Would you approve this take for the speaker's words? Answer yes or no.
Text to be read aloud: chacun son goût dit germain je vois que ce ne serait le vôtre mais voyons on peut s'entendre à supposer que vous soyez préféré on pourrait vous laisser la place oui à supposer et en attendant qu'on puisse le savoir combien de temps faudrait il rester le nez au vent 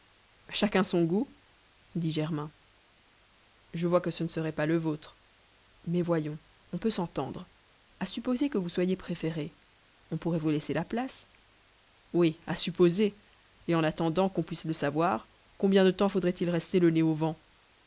no